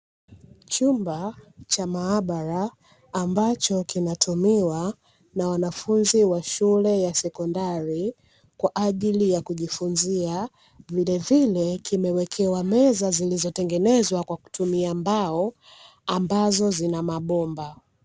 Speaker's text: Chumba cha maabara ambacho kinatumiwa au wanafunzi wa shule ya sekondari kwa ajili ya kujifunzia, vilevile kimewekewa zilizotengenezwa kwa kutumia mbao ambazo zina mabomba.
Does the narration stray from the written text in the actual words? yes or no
yes